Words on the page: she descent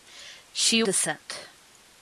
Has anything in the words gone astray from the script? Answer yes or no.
no